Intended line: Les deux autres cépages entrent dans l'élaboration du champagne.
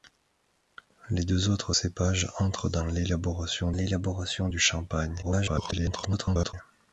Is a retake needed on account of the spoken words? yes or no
yes